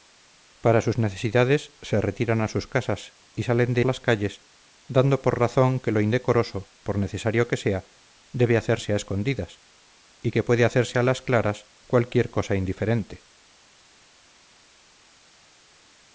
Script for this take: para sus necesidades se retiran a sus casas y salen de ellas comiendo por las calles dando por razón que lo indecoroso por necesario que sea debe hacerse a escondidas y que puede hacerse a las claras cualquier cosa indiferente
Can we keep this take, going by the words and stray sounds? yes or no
no